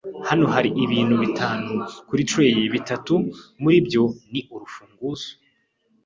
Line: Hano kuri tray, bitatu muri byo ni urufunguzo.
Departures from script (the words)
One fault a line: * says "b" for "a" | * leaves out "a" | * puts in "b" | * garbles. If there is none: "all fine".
* puts in "hari ibintu bitanu"